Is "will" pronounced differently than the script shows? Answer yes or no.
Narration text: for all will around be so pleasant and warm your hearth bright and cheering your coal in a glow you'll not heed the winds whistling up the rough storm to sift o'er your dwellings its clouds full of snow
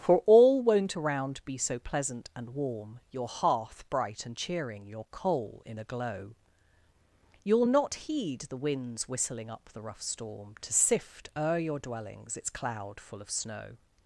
yes